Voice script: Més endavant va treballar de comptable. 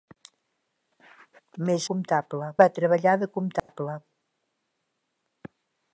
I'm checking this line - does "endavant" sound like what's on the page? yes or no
no